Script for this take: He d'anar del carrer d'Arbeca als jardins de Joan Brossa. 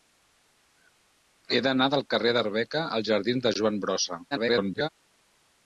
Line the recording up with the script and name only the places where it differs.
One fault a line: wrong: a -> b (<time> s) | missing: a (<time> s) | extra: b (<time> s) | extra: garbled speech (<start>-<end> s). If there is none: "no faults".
extra: garbled speech (4.3-4.9 s)